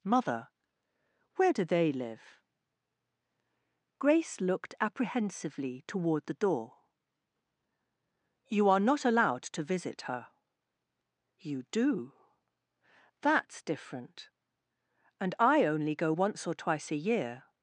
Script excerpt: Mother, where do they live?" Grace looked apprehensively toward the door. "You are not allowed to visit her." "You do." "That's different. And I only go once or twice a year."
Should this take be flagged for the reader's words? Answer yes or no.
no